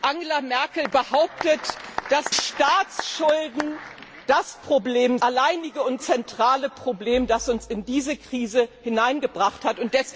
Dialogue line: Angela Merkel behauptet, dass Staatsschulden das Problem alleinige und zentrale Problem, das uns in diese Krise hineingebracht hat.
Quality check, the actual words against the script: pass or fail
pass